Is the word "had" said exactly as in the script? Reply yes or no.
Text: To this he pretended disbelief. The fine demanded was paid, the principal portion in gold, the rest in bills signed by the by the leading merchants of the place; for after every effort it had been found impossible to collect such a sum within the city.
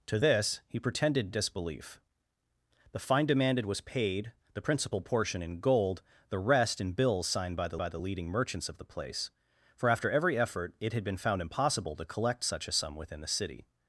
yes